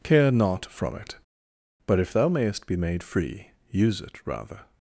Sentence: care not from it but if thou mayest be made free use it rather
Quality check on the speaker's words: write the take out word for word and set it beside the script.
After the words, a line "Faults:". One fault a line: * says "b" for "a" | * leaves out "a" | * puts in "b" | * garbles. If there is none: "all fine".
care not from it but if thou mayest be made free use it rather
Faults:
all fine